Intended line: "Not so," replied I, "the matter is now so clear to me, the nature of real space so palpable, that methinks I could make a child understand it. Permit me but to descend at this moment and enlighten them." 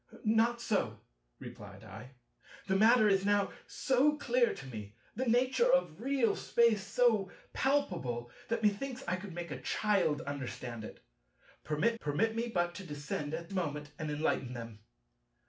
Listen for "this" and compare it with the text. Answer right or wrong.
wrong